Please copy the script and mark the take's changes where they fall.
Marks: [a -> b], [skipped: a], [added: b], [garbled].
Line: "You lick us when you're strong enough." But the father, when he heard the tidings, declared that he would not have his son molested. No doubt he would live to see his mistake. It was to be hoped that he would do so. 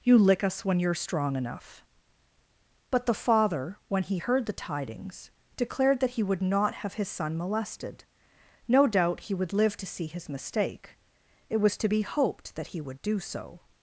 "You lick us when you're strong enough." But the father, when he heard the tidings, declared that he would not have his son molested. No doubt he would live to see his mistake. It was to be hoped that he would do so.